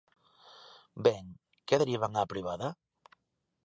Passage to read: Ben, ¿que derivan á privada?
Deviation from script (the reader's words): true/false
false